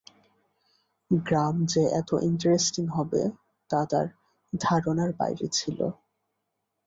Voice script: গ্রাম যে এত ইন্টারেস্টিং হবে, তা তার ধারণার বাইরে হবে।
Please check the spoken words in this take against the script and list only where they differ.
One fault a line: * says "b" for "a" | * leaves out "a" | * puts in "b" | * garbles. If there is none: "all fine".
* says "ছিল" for "হবে"